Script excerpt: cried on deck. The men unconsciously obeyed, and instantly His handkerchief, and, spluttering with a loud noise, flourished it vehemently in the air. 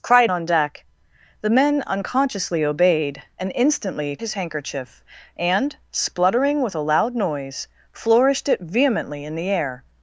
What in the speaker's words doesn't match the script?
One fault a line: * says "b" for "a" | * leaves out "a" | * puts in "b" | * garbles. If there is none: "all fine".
all fine